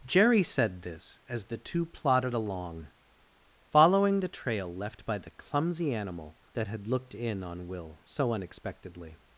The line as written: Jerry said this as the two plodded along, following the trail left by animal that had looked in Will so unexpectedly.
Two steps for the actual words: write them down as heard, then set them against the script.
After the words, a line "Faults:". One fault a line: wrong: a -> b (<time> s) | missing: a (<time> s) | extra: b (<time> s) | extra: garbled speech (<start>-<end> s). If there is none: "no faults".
Jerry said this as the two plodded along, following the trail left by the clumsy animal that had looked in on Will so unexpectedly.
Faults:
extra: the clumsy (5.2 s)
extra: on (7.4 s)